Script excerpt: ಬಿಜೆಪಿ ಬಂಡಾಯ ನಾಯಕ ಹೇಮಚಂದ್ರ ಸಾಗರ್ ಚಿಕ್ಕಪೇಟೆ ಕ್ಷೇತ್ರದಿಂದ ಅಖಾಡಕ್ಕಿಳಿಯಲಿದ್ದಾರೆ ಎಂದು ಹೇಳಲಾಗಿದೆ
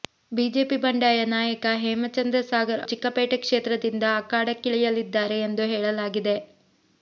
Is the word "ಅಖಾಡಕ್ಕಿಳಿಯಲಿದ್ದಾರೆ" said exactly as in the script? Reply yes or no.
yes